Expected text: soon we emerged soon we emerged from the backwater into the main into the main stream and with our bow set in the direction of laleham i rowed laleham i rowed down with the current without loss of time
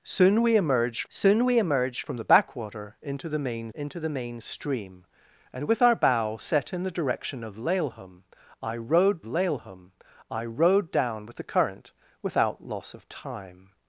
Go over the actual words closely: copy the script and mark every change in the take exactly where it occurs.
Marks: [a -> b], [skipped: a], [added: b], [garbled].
soon we emerged soon we emerged from the backwater into the main into the main stream and with our bow set in the direction of laleham i rowed laleham i rowed down with the current without loss of time